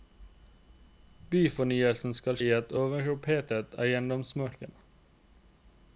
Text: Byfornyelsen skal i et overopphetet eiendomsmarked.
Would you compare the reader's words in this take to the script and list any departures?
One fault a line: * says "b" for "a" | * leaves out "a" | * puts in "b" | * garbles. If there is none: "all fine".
all fine